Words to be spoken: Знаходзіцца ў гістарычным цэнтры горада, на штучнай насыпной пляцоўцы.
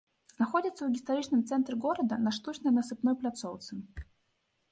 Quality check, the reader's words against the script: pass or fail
pass